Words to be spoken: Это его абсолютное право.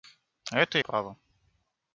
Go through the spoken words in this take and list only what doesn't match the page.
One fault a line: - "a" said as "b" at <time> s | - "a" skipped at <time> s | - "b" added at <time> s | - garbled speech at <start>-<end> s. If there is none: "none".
- "его абсолютное" skipped at 0.8 s